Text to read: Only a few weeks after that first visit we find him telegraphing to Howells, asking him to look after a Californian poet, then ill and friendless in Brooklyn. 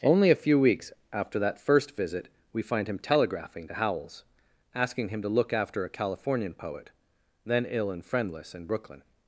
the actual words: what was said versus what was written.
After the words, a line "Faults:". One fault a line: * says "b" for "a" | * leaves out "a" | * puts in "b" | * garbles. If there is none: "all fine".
Only a few weeks after that first visit we find him telegraphing to Howells, asking him to look after a Californian poet, then ill and friendless in Brooklyn.
Faults:
all fine